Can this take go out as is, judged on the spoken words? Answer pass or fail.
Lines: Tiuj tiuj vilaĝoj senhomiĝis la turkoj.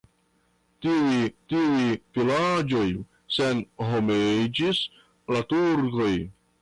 pass